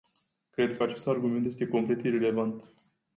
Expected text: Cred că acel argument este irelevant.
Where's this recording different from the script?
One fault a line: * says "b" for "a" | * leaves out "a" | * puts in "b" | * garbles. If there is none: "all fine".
* says "acest" for "acel"
* puts in "complet"